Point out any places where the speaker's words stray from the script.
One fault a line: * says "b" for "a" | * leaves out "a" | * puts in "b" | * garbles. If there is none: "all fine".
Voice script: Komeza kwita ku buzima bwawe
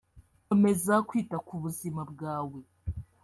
all fine